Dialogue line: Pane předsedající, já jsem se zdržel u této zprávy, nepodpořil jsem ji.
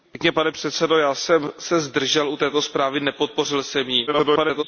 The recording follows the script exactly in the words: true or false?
false